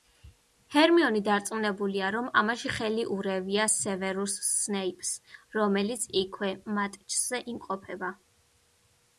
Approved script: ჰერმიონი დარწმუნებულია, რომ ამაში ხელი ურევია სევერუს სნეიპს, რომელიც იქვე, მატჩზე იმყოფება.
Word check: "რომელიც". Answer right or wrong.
right